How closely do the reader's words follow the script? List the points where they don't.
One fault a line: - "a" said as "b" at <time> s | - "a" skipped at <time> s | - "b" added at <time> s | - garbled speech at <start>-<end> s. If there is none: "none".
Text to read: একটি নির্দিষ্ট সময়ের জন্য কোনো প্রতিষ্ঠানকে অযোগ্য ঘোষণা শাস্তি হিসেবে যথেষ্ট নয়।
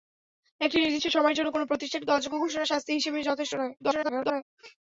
- garbled speech at 3.8-4.4 s